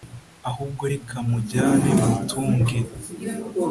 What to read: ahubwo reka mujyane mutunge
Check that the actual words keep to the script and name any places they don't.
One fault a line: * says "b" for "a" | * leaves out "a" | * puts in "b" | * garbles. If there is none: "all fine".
all fine